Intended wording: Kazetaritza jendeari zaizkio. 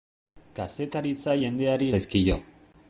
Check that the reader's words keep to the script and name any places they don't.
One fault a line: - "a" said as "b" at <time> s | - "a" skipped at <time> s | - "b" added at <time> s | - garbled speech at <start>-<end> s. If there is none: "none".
none